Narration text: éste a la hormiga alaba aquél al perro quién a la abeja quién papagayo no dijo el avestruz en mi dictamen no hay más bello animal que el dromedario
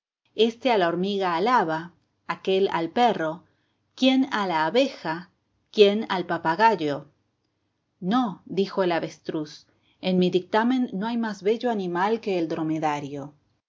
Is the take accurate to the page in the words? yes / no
no